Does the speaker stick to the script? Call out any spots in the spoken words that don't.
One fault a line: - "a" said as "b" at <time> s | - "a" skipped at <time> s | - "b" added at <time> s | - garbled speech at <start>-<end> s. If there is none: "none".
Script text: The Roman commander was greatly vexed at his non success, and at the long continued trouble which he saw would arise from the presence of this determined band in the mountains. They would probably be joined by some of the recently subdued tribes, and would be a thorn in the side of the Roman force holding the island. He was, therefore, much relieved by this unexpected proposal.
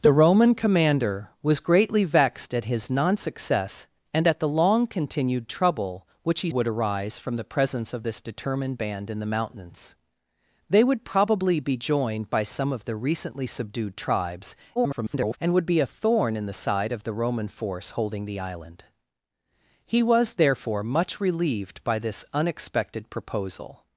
- "saw" skipped at 6.5 s
- garbled speech at 14.8-15.4 s